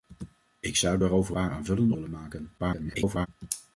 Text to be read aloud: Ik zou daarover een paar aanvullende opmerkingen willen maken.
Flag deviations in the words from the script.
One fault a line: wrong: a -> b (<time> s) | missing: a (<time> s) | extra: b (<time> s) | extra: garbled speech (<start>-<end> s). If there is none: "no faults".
missing: een (1.3 s)
missing: opmerkingen (1.9 s)
extra: garbled speech (2.6-3.3 s)